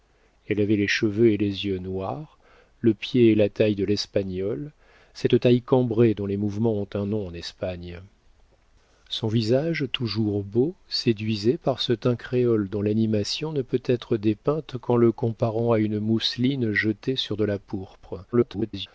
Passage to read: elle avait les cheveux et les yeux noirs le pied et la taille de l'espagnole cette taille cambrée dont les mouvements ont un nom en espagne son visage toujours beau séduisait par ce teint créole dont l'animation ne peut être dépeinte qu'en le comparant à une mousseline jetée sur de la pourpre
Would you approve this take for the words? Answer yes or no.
no